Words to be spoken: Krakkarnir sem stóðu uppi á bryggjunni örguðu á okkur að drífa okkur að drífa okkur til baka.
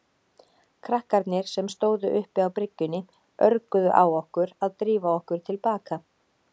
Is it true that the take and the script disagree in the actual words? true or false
true